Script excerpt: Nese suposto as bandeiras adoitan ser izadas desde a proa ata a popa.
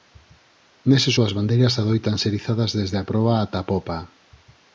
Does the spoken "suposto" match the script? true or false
false